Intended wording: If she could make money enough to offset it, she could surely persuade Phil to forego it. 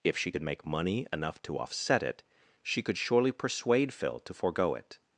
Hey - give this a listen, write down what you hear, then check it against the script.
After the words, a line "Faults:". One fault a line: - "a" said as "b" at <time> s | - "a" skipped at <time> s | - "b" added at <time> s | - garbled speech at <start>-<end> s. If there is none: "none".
If she could make money enough to offset it, she could surely persuade Phil to forego it.
Faults:
none